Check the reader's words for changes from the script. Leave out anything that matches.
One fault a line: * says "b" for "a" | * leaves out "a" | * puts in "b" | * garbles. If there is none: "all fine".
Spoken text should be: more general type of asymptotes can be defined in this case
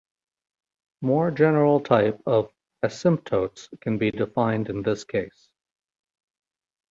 all fine